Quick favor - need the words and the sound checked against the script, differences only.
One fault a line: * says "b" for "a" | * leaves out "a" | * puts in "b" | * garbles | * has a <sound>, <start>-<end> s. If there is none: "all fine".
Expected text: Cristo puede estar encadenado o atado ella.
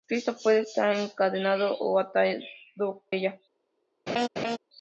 * has a laugh, 4.1-4.6 s